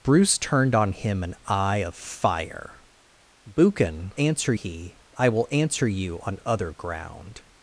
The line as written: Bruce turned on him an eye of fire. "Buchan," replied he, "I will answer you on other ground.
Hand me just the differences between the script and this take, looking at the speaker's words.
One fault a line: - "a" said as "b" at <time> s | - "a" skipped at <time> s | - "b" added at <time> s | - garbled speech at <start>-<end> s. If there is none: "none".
- "replied" said as "answer" at 4.2 s